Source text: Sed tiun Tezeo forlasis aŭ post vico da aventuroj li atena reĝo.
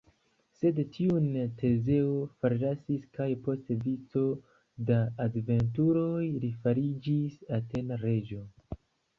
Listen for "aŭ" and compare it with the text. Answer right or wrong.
wrong